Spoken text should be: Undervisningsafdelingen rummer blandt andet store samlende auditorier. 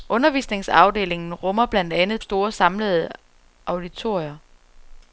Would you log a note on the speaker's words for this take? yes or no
no